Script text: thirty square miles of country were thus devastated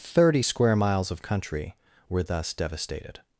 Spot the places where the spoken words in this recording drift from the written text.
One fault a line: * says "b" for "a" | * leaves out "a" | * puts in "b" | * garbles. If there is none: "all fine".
all fine